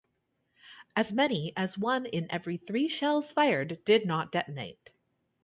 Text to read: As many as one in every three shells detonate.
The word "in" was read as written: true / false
true